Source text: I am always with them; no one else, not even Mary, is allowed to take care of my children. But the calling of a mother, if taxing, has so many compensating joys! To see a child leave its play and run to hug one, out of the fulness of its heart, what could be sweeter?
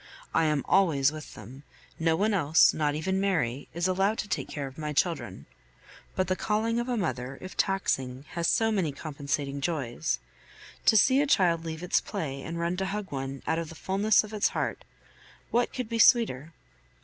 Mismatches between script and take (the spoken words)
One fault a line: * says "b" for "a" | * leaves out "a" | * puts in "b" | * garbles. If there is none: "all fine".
all fine